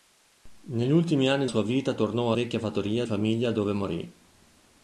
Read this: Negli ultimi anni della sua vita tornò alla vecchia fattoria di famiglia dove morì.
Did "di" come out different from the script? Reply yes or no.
yes